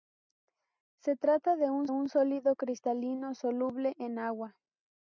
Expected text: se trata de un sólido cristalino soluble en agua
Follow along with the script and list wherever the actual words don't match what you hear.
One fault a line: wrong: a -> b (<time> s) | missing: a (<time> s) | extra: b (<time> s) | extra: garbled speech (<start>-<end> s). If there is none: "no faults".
extra: un (1.9 s)